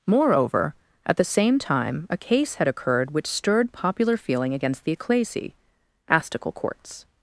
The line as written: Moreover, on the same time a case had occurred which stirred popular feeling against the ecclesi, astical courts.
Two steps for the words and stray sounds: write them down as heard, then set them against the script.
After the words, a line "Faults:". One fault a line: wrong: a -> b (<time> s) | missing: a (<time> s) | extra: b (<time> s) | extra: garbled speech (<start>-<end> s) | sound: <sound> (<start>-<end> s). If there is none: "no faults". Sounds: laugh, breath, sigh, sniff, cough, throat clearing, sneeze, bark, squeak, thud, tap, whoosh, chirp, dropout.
Moreover, at the same time a case had occurred which stirred popular feeling against the ecclesi, astical courts.
Faults:
wrong: on -> at (1.1 s)